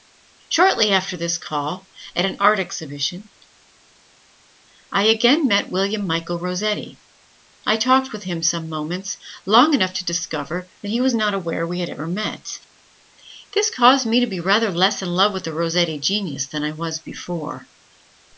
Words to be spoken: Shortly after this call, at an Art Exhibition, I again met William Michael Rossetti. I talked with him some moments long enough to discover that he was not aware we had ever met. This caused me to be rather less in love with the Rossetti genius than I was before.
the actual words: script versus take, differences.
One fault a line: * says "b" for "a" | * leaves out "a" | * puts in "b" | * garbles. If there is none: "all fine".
all fine